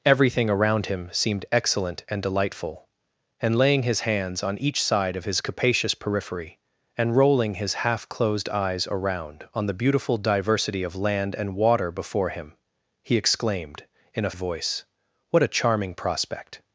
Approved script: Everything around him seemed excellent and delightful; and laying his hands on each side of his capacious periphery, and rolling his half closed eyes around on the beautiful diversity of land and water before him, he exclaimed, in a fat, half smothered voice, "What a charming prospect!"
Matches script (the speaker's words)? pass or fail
fail